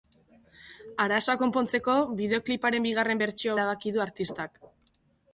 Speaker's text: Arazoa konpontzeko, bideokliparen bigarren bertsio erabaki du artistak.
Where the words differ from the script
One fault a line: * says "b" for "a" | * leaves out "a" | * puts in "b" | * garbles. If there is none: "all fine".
all fine